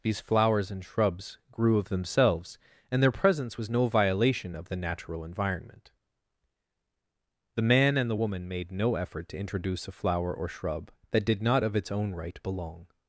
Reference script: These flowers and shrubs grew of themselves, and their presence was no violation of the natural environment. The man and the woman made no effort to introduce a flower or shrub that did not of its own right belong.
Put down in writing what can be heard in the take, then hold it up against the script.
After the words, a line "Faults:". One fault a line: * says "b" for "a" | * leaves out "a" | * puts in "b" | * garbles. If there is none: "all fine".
These flowers and shrubs grew of themselves, and their presence was no violation of the natural environment. The man and the woman made no effort to introduce a flower or shrub that did not of its own right belong.
Faults:
all fine